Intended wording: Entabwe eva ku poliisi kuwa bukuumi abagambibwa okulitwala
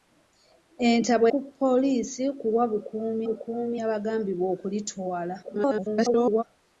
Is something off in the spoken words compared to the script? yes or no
yes